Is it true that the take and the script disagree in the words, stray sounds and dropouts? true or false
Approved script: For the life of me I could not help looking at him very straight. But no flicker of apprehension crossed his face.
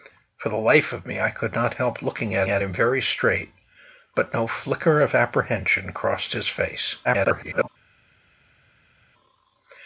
true